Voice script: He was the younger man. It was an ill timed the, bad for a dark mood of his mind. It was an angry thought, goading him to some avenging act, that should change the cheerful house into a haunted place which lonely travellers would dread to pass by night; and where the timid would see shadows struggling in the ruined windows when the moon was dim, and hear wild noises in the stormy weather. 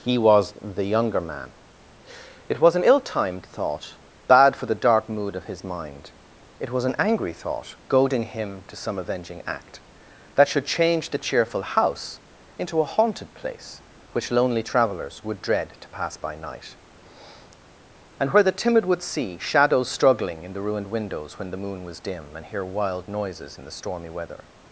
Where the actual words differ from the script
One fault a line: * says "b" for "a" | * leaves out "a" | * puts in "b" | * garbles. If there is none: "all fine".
* says "thought" for "the"
* says "the" for "a"